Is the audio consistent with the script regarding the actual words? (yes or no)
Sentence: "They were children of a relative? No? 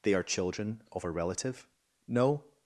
no